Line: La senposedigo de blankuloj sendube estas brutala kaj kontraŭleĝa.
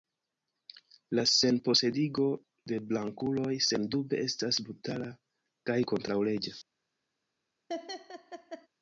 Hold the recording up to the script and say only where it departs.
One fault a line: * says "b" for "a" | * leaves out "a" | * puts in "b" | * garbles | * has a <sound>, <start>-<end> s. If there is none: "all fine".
* has a laugh, 7.7-8.7 s